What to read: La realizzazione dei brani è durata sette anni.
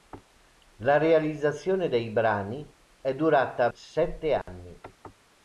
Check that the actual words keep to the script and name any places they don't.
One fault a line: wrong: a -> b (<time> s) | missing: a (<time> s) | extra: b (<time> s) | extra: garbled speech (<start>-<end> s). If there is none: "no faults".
no faults